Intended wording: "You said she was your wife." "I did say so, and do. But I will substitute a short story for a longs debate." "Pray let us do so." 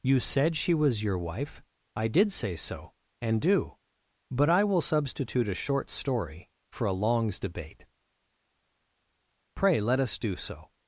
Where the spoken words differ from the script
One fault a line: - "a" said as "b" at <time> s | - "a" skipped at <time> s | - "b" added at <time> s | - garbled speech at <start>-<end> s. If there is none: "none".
none